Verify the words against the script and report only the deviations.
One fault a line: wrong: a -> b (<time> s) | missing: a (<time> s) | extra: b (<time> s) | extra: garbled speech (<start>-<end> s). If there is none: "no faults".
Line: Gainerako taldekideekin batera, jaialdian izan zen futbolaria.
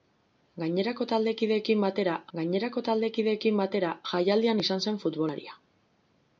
extra: gainerako taldekideekin batera (2.4 s)